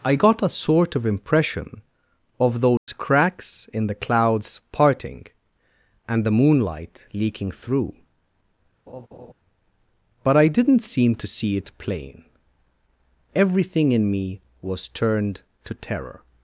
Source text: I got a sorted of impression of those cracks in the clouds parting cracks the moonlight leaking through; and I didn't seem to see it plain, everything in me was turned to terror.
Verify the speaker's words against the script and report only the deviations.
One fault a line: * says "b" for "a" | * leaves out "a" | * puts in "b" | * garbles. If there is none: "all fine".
* says "sort" for "sorted"
* says "and" for "cracks"
* says "but" for "and"